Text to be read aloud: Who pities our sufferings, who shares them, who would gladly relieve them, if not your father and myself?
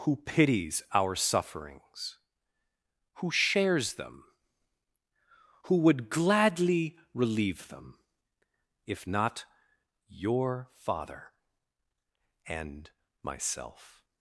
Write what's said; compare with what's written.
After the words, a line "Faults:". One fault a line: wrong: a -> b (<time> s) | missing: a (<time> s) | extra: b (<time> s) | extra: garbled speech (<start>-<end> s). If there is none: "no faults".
Who pities our sufferings, who shares them, who would gladly relieve them, if not your father and myself?
Faults:
no faults